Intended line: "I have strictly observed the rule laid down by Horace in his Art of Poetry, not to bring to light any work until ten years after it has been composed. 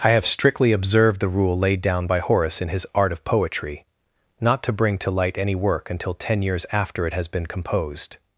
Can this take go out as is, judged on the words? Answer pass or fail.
pass